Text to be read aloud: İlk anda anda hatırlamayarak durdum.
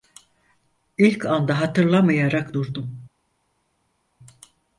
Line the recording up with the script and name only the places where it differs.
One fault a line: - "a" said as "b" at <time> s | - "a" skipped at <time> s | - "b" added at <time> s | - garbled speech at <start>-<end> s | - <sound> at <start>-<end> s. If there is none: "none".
- "anda" skipped at 1.6 s